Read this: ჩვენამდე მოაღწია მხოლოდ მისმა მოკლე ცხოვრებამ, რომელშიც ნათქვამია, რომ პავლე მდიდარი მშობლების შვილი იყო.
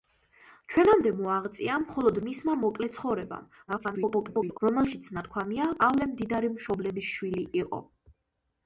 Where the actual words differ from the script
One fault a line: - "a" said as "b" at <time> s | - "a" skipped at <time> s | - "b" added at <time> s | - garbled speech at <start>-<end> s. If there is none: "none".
- garbled speech at 3.7-4.6 s
- "რომ" skipped at 5.7 s